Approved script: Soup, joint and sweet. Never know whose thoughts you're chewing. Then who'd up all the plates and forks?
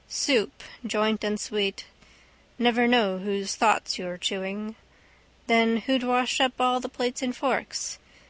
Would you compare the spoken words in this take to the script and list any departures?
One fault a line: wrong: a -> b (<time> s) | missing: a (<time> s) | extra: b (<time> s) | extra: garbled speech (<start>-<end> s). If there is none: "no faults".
extra: wash (6.0 s)